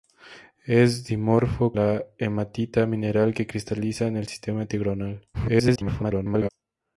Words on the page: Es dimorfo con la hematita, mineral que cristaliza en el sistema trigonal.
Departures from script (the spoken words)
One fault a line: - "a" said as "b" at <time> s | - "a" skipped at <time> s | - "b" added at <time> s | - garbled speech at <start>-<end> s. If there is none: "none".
- "con" skipped at 1.8 s
- garbled speech at 5.3-6.5 s